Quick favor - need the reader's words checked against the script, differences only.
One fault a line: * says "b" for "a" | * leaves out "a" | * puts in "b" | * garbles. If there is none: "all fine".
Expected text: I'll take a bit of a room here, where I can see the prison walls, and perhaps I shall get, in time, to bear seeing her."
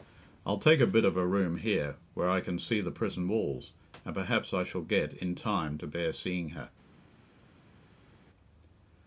all fine